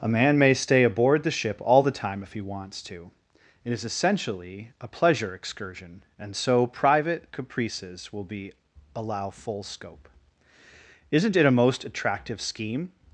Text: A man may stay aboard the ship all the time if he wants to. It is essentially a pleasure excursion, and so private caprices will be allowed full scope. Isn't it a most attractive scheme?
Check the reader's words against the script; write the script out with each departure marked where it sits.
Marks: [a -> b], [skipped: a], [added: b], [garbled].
A man may stay aboard the ship all the time if he wants to. It is essentially a pleasure excursion, and so private caprices will be [allowed -> allow] full scope. Isn't it a most attractive scheme?